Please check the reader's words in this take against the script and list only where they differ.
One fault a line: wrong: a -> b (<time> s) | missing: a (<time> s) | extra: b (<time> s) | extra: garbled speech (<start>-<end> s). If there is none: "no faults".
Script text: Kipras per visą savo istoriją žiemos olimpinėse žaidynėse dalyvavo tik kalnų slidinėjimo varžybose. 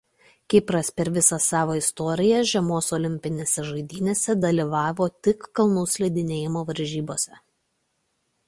no faults